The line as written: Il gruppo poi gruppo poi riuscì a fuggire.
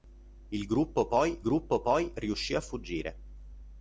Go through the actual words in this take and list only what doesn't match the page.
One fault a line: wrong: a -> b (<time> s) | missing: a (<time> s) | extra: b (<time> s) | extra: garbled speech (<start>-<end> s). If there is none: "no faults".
no faults